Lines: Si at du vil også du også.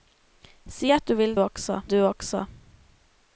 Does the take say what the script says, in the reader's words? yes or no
yes